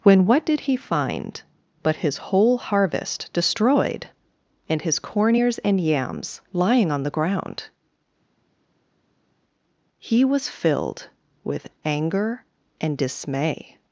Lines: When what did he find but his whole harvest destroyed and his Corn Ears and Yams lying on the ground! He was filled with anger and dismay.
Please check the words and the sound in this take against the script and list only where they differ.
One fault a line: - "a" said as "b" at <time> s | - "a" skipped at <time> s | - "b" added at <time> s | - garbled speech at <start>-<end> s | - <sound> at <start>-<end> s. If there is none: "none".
none